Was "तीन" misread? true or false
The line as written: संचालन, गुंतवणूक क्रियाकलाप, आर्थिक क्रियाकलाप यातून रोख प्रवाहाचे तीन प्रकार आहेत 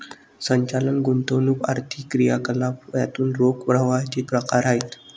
true